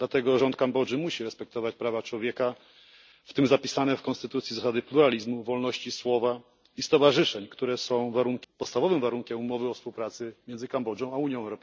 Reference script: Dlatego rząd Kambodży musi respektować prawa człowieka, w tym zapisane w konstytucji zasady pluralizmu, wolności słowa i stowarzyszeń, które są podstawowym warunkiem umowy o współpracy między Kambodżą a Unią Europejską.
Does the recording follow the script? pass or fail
pass